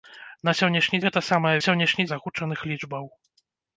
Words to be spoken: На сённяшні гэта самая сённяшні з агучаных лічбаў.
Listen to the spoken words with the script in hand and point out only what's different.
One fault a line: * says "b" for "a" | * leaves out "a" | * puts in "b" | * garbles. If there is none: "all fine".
all fine